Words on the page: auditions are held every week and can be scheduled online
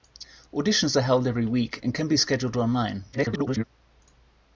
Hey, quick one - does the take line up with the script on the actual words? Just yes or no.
no